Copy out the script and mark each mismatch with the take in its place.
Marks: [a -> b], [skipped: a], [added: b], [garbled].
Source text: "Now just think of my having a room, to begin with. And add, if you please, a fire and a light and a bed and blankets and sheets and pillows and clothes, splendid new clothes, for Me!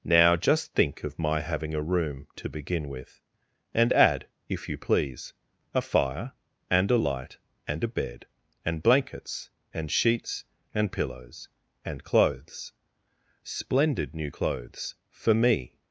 "Now just think of my having a room, to begin with. And add, if you please, a fire and a light and a bed and blankets and sheets and pillows and clothes, splendid new clothes, for Me!